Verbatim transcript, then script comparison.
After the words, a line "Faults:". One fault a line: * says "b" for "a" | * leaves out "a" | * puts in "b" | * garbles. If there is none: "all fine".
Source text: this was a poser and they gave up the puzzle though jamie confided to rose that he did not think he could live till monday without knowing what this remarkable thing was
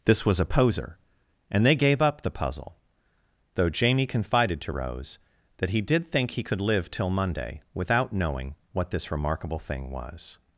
this was a poser and they gave up the puzzle though jamie confided to rose that he did think he could live till monday without knowing what this remarkable thing was
Faults:
* leaves out "not"